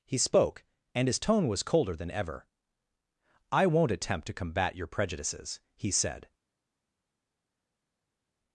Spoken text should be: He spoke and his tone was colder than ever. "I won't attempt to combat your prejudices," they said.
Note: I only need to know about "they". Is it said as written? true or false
false